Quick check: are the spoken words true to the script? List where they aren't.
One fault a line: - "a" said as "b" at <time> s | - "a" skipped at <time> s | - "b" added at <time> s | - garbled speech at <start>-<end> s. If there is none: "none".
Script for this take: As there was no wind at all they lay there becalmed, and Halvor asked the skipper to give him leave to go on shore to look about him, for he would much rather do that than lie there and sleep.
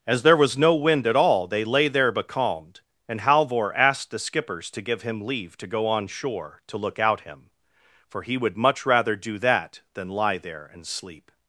- "skipper" said as "skippers" at 4.2 s
- "about" said as "out" at 7.0 s